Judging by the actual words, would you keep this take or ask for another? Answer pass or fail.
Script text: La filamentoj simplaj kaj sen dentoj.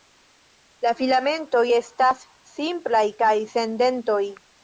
fail